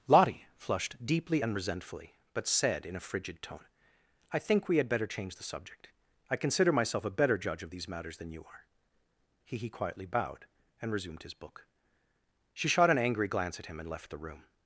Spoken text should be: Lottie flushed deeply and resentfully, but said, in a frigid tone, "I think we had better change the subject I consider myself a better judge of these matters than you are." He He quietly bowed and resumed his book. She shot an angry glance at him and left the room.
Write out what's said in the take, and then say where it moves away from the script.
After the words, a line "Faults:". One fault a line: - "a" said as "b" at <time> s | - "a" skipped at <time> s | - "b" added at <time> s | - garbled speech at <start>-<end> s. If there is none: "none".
Lottie flushed deeply and resentfully, but said, in a frigid tone, "I think we had better change the subject I consider myself a better judge of these matters than you are." He He quietly bowed and resumed his book. She shot an angry glance at him and left the room.
Faults:
none